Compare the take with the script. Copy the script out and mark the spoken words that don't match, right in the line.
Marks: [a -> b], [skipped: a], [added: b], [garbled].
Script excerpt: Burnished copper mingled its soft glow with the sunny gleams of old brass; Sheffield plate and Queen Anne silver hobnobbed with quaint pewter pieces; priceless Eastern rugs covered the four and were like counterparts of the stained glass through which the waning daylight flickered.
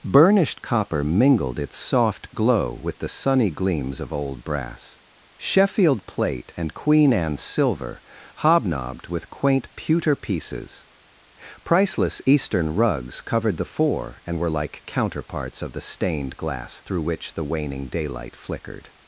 Burnished copper mingled its soft glow with the sunny gleams of old brass; Sheffield plate and Queen Anne silver hobnobbed with quaint pewter pieces; priceless Eastern rugs covered the four and were like counterparts of the stained glass through which the waning daylight flickered.